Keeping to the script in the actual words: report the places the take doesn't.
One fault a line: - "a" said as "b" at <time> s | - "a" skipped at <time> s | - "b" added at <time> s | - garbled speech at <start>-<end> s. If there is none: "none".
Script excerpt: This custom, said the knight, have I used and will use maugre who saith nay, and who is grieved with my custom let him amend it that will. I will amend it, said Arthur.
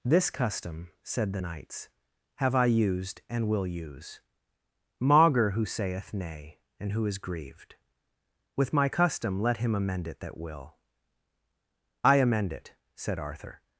- "knight" said as "knights" at 1.4 s
- "will" skipped at 12.2 s